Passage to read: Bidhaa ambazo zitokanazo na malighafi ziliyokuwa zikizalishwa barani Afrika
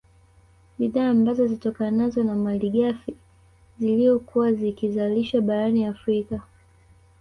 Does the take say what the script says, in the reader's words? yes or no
yes